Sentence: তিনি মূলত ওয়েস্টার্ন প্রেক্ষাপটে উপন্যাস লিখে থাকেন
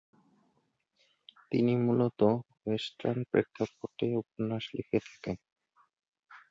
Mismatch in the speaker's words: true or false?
false